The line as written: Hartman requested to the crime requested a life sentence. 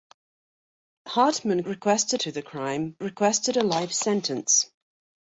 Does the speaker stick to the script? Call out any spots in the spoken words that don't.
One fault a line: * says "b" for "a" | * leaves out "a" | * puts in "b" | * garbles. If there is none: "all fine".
all fine